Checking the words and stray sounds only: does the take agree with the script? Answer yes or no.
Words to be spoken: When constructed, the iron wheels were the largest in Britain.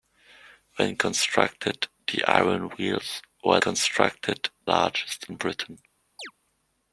no